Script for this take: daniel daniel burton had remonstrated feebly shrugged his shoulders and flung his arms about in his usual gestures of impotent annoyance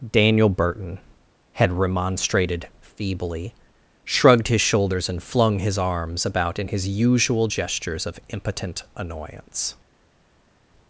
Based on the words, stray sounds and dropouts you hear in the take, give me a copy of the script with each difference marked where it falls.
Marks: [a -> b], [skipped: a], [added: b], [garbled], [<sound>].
daniel [skipped: daniel] burton had remonstrated feebly shrugged his shoulders and flung his arms about in his usual gestures of impotent annoyance